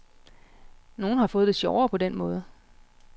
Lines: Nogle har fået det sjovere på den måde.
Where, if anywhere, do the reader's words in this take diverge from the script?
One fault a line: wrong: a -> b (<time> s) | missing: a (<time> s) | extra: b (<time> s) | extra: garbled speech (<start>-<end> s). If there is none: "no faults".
no faults